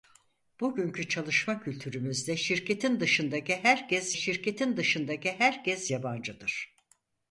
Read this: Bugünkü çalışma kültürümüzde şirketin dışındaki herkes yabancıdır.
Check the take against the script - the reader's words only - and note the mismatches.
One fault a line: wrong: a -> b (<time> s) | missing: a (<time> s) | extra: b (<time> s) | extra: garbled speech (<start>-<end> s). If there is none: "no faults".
extra: şirketin dışındaki herkes (4.1 s)